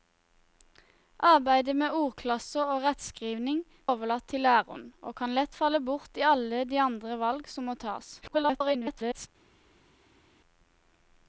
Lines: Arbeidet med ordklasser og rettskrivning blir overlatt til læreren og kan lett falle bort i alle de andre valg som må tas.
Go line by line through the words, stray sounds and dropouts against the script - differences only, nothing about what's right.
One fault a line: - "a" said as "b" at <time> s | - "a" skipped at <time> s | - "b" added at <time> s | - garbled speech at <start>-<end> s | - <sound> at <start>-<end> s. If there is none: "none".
- "blir" skipped at 3.6 s
- garbled speech at 8.2-9.3 s